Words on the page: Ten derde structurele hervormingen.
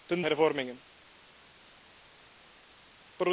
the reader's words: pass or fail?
fail